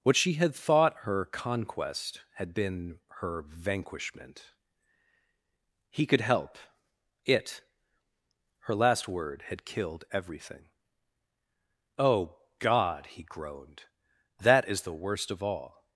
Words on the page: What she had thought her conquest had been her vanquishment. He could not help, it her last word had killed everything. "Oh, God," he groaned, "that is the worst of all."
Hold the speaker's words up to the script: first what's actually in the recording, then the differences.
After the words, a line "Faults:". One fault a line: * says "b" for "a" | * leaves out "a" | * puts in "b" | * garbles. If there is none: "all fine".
What she had thought her conquest had been her vanquishment. He could help, it her last word had killed everything. "Oh, God," he groaned, "that is the worst of all."
Faults:
* leaves out "not"